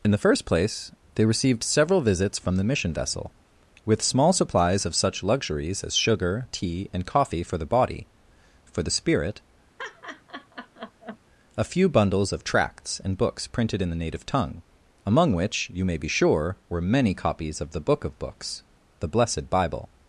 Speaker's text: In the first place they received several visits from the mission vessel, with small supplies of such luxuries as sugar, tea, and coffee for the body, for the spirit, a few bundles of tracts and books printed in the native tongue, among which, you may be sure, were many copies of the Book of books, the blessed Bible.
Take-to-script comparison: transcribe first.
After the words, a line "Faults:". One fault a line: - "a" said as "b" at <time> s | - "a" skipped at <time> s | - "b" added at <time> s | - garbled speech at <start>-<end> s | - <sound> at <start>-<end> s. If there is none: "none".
In the first place they received several visits from the mission vessel, with small supplies of such luxuries as sugar, tea, and coffee for the body, for the spirit, a few bundles of tracts and books printed in the native tongue, among which, you may be sure, were many copies of the Book of books, the blessed Bible.
Faults:
- laugh at 9.8-11.2 s